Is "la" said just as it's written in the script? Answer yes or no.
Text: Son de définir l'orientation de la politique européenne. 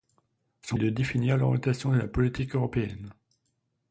yes